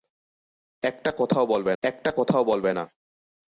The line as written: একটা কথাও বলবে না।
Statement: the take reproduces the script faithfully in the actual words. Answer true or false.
false